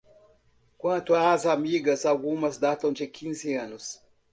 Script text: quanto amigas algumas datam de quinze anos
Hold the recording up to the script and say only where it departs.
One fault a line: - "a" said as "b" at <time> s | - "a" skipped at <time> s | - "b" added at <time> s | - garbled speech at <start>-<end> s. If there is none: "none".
- "às" added at 1.1 s